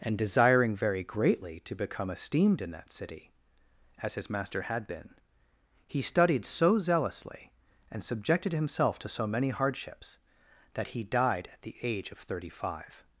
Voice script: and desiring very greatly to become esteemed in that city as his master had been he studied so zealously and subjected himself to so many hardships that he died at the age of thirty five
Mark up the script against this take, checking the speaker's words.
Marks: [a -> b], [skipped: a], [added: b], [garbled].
and desiring very greatly to become esteemed in that city as his master had been he studied so zealously and subjected himself to so many hardships that he died at the age of thirty five